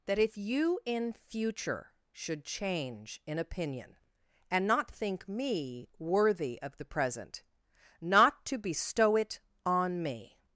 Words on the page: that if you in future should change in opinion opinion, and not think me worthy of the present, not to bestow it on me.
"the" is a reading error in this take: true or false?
false